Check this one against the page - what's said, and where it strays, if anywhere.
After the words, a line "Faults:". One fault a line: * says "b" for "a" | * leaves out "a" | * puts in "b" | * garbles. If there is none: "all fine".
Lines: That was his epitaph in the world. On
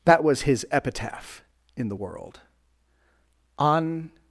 That was his epitaph in the world. On
Faults:
all fine